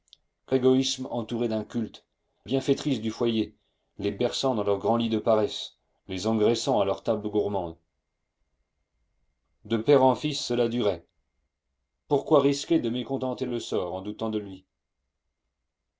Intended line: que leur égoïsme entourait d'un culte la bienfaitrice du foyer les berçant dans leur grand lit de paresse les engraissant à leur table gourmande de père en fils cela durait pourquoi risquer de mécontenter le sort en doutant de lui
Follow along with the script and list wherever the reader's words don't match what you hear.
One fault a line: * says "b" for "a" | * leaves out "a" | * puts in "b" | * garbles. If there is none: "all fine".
* leaves out "leur"
* leaves out "la"